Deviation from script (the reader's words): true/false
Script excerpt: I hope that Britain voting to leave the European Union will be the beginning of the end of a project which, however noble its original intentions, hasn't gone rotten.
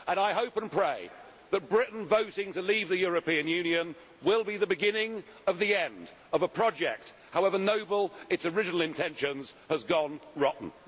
true